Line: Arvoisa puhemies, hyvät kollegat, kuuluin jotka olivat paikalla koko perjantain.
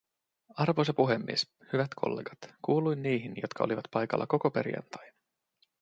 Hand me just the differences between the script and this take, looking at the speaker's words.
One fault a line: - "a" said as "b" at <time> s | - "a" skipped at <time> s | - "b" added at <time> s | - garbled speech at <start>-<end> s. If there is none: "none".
- "niihin" added at 3.0 s